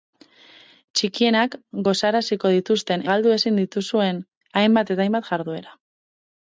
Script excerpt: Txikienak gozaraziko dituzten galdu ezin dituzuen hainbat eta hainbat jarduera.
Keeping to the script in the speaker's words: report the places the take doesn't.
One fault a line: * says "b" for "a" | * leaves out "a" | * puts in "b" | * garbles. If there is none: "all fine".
all fine